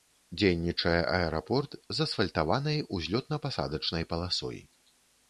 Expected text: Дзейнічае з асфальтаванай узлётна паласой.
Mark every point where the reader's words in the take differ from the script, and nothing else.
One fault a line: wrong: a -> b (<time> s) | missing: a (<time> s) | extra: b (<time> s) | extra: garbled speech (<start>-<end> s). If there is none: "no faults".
extra: аэрапорт (1.2 s)
extra: пасадачнай (3.5 s)